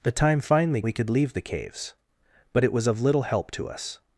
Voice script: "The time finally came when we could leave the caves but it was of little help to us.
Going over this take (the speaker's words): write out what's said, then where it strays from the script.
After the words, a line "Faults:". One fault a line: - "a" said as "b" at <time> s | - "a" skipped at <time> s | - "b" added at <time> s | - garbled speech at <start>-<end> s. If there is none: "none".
"The time finally we could leave the caves but it was of little help to us.
Faults:
- "came when" skipped at 0.8 s